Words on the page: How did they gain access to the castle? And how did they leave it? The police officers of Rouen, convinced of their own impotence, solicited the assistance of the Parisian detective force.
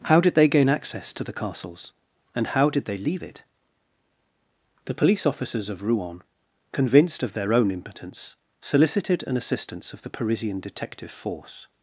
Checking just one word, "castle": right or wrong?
wrong